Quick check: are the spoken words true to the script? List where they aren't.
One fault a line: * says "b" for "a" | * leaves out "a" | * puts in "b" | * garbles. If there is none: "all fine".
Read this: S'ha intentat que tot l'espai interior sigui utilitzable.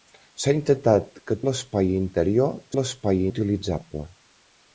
* leaves out "tot"
* says "l'espai" for "sigui"